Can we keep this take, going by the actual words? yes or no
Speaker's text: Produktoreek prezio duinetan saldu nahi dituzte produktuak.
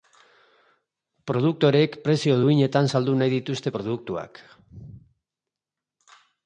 yes